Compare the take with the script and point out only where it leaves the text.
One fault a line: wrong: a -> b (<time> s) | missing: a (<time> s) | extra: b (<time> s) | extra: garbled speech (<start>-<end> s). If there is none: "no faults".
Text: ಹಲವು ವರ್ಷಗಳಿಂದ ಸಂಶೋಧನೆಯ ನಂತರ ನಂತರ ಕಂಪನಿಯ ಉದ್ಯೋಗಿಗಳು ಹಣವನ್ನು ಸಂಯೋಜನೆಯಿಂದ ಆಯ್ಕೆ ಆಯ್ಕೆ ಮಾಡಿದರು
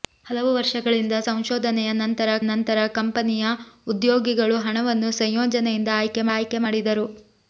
no faults